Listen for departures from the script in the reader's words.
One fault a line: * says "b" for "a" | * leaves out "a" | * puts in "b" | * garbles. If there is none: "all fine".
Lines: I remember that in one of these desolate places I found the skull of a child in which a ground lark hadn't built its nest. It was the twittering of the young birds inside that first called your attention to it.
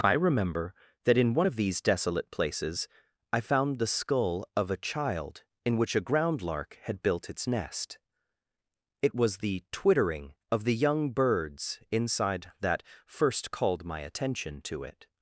* says "had" for "hadn't"
* says "my" for "your"